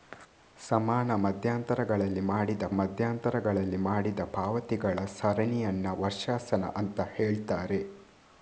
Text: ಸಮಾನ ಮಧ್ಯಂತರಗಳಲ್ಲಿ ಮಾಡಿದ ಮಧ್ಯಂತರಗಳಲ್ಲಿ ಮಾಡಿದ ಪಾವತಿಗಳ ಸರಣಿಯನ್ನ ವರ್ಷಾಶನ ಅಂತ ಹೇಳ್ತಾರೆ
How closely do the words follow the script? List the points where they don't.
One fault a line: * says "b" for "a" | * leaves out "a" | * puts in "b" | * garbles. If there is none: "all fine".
all fine